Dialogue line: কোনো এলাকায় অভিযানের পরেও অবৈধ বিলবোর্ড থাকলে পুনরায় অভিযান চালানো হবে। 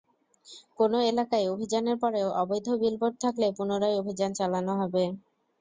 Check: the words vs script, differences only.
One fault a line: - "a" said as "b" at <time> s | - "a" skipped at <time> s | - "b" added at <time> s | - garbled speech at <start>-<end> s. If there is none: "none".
none